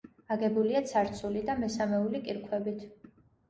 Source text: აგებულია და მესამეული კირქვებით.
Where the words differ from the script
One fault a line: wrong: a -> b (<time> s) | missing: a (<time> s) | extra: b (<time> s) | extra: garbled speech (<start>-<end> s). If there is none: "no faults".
extra: ცარცული (0.9 s)